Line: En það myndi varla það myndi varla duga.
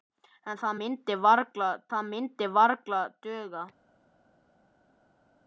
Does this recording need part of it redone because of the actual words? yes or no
no